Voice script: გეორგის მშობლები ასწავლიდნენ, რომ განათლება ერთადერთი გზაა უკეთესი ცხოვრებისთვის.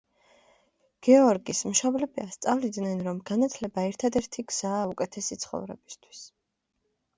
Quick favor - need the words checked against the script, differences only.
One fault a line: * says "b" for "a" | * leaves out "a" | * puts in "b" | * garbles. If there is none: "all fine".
all fine